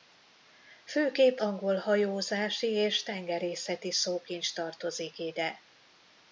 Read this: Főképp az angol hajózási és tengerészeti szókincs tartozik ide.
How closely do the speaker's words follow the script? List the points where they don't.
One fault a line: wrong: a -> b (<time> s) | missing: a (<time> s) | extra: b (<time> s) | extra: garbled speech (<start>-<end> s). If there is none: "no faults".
missing: az (1.4 s)